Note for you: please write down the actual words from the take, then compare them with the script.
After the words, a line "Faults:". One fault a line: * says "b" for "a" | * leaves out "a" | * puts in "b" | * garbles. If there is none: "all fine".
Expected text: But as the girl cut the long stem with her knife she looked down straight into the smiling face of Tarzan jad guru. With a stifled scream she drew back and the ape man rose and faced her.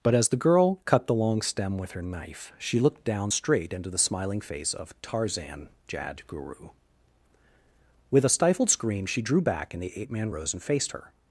But as the girl cut the long stem with her knife she looked down straight into the smiling face of Tarzan jad guru. With a stifled scream she drew back and the ape man rose and faced her.
Faults:
all fine